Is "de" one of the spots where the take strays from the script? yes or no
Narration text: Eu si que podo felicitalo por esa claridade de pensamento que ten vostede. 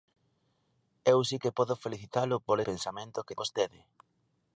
yes